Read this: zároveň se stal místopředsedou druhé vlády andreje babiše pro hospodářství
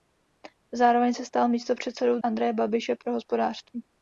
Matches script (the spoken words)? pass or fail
fail